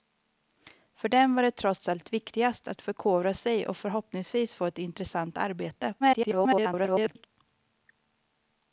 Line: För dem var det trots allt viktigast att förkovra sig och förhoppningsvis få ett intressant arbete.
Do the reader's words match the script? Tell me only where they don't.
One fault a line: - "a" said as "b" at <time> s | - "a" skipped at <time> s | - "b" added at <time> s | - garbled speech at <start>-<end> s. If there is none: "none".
- garbled speech at 6.0-7.3 s